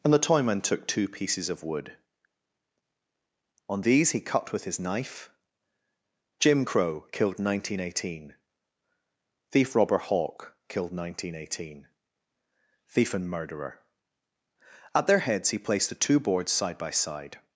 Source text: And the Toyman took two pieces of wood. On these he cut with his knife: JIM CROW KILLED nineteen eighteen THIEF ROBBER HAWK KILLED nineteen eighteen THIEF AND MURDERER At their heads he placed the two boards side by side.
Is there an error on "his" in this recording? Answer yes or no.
no